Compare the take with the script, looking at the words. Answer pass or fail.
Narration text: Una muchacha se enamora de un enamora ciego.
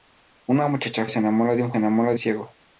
pass